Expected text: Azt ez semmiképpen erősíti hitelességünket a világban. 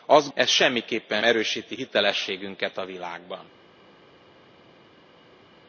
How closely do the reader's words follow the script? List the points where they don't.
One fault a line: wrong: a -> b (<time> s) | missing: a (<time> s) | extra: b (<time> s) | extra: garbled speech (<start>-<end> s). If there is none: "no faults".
no faults